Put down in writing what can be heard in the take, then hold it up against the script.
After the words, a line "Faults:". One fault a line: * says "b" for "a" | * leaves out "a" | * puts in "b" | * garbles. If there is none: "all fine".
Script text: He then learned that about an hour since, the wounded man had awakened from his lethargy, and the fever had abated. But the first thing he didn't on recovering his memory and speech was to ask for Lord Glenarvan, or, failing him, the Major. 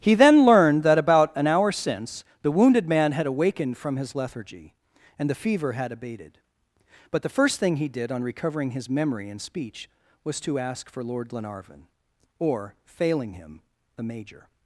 He then learned that about an hour since, the wounded man had awakened from his lethargy, and the fever had abated. But the first thing he did on recovering his memory and speech was to ask for Lord Glenarvan, or, failing him, the Major.
Faults:
* says "did" for "didn't"